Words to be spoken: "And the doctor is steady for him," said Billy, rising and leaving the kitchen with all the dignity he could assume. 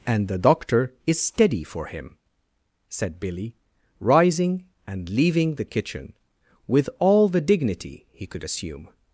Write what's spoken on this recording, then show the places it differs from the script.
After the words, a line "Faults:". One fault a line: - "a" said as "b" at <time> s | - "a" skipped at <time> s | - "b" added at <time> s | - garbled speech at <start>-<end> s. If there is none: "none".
"And the doctor is steady for him," said Billy, rising and leaving the kitchen with all the dignity he could assume.
Faults:
none